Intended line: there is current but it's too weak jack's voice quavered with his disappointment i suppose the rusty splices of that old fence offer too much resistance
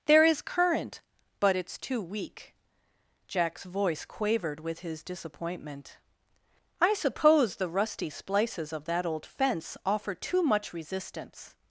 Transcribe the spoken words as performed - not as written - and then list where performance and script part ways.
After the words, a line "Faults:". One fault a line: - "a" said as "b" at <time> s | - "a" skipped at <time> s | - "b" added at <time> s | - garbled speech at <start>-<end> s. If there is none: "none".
there is current but it's too weak jack's voice quavered with his disappointment i suppose the rusty splices of that old fence offer too much resistance
Faults:
none